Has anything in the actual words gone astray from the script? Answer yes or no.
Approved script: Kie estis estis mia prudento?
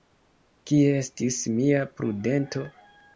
yes